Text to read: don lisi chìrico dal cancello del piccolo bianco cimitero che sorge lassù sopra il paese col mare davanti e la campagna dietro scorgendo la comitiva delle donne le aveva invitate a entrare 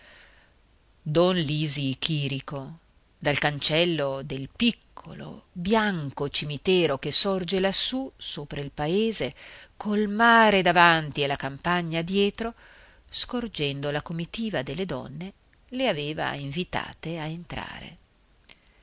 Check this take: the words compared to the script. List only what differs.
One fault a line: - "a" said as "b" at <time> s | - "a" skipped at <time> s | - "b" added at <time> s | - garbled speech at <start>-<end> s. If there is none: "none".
none